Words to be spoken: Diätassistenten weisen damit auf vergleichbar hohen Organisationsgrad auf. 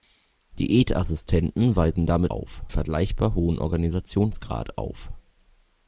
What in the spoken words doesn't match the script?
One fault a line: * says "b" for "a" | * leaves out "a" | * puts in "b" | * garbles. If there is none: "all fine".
all fine